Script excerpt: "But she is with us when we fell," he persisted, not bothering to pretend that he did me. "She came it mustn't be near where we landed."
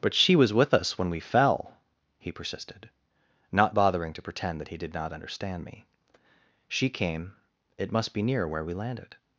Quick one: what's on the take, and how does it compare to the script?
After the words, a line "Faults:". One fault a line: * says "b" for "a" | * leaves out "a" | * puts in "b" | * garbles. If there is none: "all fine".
"But she was with us when we fell," he persisted, not bothering to pretend that he did not understand me. "She came it must be near where we landed."
Faults:
* says "was" for "is"
* puts in "not understand"
* says "must" for "mustn't"